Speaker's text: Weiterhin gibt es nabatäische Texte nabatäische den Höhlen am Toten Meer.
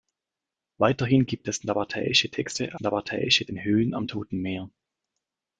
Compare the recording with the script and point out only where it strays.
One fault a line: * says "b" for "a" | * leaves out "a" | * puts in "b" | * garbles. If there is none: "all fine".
all fine